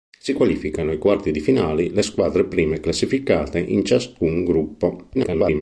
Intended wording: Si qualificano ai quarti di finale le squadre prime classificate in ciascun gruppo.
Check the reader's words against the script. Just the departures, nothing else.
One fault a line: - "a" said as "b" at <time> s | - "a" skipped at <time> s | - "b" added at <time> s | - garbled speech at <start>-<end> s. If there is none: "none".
- garbled speech at 5.1-5.6 s